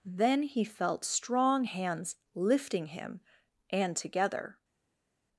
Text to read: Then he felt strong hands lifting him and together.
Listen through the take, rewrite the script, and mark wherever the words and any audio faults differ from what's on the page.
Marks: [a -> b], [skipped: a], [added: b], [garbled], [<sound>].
Then he felt strong hands lifting him and together.